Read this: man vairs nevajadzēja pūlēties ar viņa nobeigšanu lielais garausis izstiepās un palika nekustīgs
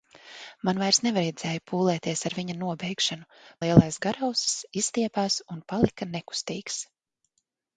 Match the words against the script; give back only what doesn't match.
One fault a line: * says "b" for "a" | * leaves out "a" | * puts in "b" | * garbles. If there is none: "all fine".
all fine